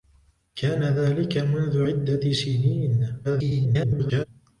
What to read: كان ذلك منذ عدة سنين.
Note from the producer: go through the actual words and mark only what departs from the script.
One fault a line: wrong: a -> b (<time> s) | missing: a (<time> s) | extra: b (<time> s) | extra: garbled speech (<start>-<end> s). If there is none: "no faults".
extra: garbled speech (3.2-4.3 s)